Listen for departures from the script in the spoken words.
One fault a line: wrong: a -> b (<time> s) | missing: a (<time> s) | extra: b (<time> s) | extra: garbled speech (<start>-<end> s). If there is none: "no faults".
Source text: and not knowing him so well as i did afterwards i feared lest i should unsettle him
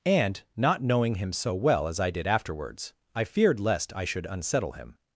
no faults